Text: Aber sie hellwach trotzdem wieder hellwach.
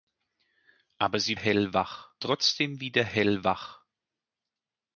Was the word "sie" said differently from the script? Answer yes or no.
no